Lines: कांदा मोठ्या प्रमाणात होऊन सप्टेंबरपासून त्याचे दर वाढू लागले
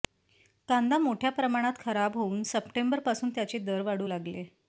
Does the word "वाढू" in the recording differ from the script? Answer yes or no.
no